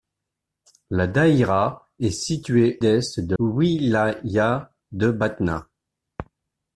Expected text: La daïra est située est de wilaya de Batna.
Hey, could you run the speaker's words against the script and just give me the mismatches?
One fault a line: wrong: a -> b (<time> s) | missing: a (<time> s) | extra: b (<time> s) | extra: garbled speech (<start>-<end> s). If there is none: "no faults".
no faults